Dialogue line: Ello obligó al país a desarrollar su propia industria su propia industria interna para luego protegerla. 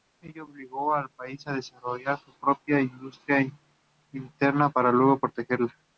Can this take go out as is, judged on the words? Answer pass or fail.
fail